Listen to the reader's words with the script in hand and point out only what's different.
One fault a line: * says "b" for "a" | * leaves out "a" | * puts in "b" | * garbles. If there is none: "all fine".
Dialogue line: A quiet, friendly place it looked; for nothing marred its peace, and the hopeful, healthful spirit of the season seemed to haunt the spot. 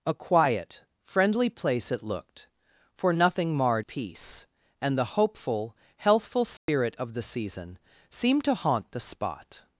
* leaves out "its"